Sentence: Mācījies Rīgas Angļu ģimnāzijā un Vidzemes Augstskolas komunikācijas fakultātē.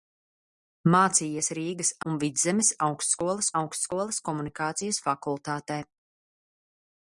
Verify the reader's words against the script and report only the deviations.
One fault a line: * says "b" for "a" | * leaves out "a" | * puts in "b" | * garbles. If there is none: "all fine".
* leaves out "Angļu ģimnāzijā"
* puts in "Augstskolas"